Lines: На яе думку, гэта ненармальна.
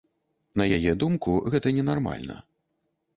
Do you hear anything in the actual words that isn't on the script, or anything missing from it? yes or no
no